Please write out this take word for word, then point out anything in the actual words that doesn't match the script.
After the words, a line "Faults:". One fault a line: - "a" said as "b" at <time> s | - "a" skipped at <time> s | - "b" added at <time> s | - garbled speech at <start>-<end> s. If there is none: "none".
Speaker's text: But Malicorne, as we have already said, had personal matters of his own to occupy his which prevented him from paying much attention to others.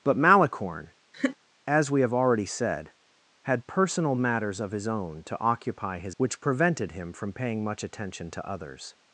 But Malicorne, as we have already said, had personal matters of his own to occupy his which prevented him from paying much attention to others.
Faults:
none